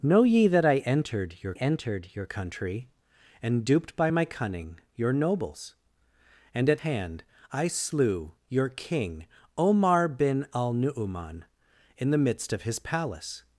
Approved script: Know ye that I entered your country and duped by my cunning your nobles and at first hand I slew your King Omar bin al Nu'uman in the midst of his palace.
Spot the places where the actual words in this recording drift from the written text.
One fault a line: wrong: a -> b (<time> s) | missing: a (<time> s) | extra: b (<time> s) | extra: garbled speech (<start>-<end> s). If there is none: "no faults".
extra: entered your (1.5 s)
missing: first (6.8 s)